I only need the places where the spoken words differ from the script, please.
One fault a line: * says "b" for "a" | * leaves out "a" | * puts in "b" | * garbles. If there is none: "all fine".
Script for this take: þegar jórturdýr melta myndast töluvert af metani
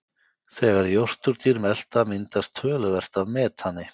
all fine